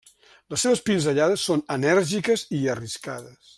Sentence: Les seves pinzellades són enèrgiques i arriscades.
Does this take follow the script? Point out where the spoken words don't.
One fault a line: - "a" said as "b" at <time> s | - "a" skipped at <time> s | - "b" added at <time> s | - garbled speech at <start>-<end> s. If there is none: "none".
none